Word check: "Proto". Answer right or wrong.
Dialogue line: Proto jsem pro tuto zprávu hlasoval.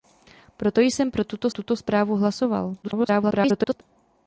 right